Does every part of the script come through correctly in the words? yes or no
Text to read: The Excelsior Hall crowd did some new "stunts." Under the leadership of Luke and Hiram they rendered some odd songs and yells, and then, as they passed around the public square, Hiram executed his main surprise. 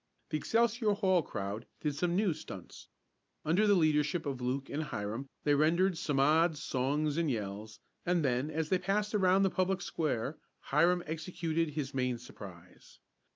yes